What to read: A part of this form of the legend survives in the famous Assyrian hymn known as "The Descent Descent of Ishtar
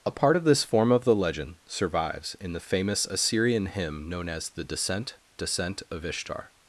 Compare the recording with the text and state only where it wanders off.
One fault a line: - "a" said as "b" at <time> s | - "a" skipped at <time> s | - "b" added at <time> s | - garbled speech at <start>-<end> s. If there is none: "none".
none